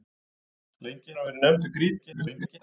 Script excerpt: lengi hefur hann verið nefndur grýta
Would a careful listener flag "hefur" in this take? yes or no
yes